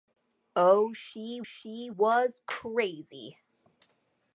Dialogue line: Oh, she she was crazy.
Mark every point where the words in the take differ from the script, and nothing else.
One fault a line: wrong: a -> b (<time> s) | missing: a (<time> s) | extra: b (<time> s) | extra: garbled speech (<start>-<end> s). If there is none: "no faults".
no faults